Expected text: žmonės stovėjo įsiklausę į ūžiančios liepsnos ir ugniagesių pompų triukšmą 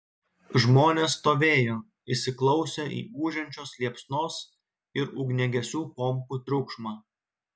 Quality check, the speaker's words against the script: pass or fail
pass